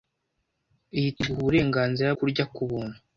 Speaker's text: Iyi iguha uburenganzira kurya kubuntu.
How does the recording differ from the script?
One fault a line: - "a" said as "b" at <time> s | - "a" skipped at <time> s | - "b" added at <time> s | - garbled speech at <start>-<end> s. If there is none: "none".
none